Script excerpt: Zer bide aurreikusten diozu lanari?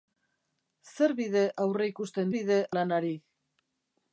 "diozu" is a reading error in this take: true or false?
true